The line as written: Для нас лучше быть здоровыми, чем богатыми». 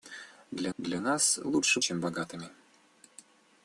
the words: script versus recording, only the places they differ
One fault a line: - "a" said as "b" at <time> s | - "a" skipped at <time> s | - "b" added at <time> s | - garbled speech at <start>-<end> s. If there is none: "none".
- "для" added at 0.8 s
- "быть здоровыми" skipped at 1.8 s